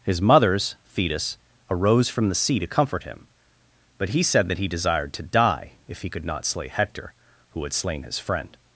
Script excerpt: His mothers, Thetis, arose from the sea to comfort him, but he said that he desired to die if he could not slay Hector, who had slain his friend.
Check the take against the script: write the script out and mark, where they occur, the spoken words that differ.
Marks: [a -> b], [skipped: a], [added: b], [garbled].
His mothers, Thetis, arose from the sea to comfort him, but he said that he desired to die if he could not slay Hector, who had slain his friend.